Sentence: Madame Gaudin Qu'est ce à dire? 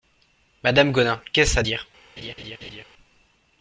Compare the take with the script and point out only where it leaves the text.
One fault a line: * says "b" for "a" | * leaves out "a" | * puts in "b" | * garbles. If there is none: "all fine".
all fine